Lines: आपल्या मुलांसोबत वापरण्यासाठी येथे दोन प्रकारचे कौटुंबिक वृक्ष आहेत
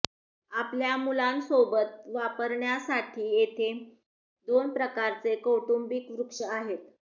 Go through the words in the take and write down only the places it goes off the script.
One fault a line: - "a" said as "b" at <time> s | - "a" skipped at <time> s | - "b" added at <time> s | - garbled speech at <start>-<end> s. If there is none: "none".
none